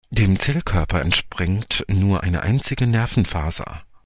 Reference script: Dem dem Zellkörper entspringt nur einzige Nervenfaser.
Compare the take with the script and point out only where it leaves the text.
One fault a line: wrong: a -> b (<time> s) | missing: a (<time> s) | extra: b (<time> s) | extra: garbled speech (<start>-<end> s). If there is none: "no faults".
missing: dem (0.4 s)
extra: eine (2.2 s)